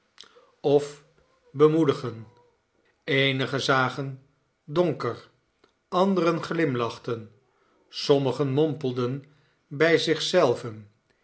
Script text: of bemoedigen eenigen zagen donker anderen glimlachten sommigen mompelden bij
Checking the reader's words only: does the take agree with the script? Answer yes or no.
yes